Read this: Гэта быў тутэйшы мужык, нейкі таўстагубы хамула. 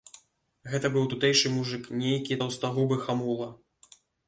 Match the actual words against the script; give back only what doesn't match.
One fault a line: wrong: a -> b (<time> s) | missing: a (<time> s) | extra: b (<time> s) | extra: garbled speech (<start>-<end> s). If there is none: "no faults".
no faults